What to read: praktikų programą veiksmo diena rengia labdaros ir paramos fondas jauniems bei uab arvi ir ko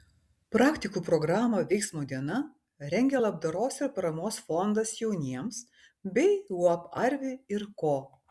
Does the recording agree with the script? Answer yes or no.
yes